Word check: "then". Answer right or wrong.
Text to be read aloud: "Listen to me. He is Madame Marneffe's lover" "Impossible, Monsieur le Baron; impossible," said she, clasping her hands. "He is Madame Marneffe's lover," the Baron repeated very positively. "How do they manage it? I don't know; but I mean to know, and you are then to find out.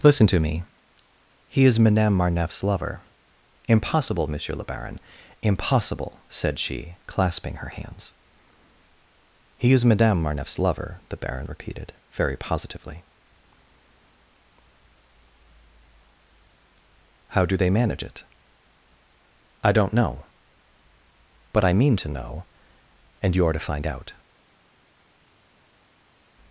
wrong